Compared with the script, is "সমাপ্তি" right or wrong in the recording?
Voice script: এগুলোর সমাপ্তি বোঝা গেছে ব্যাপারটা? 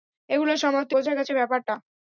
right